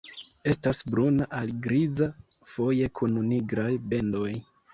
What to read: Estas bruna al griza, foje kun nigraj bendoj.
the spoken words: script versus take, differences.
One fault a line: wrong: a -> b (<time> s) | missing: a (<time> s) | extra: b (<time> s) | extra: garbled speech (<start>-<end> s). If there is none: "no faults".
no faults